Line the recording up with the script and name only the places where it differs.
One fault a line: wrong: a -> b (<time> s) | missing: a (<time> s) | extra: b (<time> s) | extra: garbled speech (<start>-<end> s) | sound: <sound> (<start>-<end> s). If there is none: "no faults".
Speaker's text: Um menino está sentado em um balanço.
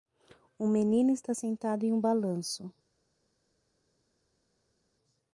no faults